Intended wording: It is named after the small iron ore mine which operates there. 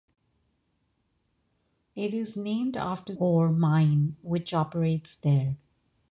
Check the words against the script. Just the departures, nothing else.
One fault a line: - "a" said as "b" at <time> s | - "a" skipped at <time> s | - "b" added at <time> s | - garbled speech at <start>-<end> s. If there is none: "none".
- "the small iron" skipped at 3.1 s